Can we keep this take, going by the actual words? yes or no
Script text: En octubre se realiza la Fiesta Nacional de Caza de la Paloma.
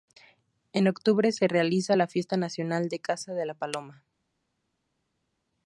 yes